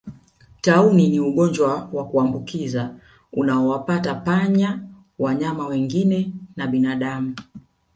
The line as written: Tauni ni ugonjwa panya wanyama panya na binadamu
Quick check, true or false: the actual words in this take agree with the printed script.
false